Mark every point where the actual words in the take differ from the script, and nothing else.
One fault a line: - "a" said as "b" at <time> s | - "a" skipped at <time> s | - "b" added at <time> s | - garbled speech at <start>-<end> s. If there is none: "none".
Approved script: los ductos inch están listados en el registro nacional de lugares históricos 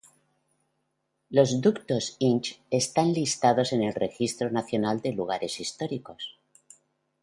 none